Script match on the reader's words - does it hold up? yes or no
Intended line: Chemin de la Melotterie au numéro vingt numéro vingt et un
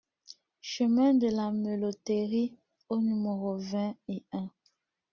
no